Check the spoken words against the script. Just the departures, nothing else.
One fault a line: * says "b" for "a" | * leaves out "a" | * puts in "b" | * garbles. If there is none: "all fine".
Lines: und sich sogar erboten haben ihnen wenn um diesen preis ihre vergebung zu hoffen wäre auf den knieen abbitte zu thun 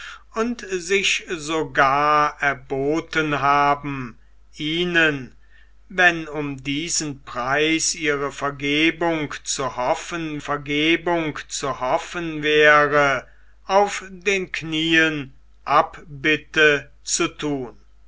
* puts in "vergebung zu hoffen"